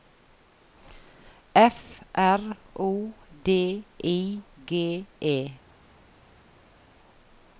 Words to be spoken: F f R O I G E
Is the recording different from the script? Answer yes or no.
yes